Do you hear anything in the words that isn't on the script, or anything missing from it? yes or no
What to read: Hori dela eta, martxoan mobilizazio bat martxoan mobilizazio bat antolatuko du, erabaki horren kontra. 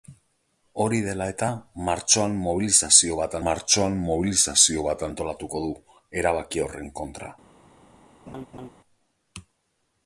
no